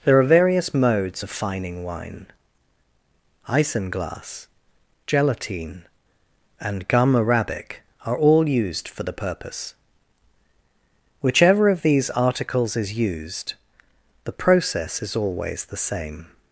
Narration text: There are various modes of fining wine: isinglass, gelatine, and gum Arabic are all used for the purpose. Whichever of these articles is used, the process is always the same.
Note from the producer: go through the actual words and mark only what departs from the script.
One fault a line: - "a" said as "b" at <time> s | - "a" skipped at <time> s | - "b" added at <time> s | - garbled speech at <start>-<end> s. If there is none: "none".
none